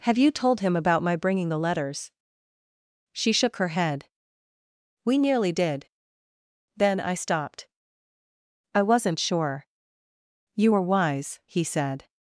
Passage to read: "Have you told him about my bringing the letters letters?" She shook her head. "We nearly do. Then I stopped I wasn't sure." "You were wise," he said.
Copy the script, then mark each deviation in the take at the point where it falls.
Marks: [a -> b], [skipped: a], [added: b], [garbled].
"Have you told him about my bringing the letters [skipped: letters?"] She shook her head. "We nearly [do. -> did] Then I stopped I wasn't sure." "You were wise," he said.